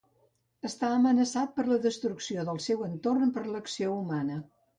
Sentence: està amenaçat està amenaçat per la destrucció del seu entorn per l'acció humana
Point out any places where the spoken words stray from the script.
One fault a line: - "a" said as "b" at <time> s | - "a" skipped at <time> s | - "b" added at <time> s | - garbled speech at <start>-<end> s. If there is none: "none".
- "està amenaçat" skipped at 1.5 s